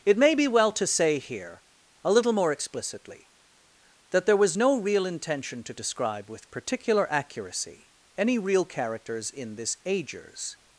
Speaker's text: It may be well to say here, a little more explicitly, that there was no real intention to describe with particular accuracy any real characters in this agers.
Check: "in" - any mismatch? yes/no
no